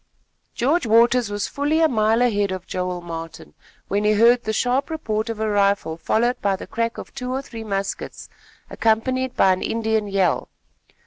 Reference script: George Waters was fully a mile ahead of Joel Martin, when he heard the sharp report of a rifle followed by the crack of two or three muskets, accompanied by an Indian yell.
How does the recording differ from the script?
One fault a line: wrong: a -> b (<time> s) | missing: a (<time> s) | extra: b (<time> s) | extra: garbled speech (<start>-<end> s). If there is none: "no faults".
no faults